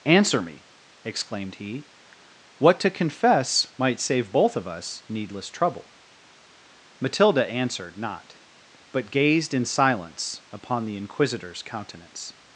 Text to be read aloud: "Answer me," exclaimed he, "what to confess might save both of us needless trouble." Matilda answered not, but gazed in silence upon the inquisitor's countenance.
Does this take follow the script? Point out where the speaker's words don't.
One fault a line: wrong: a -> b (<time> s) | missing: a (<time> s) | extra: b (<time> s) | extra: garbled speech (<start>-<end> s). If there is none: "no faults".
no faults